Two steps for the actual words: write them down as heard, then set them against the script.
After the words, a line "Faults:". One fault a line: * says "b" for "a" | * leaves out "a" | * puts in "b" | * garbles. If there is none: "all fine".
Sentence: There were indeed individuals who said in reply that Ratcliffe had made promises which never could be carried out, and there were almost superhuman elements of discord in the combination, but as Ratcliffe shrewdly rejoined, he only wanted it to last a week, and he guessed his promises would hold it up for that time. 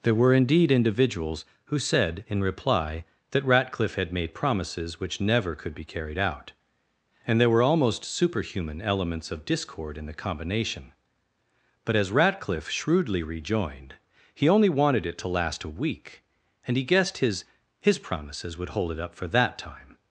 There were indeed individuals who said in reply that Ratcliffe had made promises which never could be carried out, and there were almost superhuman elements of discord in the combination, but as Ratcliffe shrewdly rejoined, he only wanted it to last a week, and he guessed his his promises would hold it up for that time.
Faults:
* puts in "his"